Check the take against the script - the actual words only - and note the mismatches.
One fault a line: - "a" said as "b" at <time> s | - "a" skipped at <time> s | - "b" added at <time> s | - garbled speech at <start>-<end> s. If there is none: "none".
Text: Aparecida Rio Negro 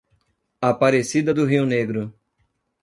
- "do" added at 1.3 s